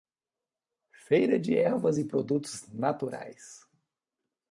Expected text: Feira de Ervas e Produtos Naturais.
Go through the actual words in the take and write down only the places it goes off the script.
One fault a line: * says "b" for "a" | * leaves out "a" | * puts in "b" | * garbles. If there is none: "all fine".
all fine